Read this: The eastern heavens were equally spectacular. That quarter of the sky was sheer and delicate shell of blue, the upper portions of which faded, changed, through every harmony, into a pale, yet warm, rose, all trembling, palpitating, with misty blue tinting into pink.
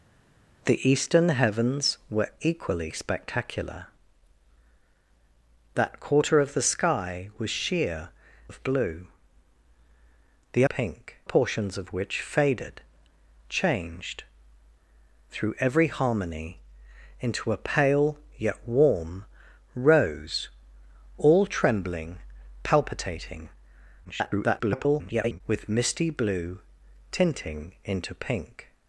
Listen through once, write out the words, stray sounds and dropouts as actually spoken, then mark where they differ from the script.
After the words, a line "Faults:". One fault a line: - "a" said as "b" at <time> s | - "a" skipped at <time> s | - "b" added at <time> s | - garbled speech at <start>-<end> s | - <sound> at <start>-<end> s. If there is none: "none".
The eastern heavens were equally spectacular. That quarter of the sky was sheer of blue, the pink portions of which faded, changed, through every harmony, into a pale, yet warm, rose, all trembling, palpitating, [garbled] with misty blue tinting into pink.
Faults:
- "and delicate shell" skipped at 8.1 s
- "upper" said as "pink" at 10.6 s
- garbled speech at 24.0-25.4 s